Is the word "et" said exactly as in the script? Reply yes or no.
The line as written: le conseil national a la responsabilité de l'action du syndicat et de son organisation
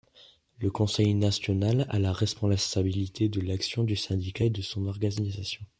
yes